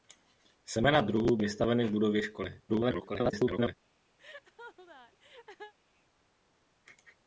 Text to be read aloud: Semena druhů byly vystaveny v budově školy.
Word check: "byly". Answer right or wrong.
wrong